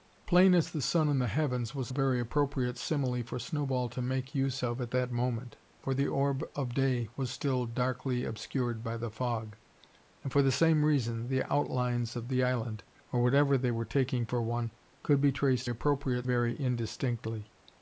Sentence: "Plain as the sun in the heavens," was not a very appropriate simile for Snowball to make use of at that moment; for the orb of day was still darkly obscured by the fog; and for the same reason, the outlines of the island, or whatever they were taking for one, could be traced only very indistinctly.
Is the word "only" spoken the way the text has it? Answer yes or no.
no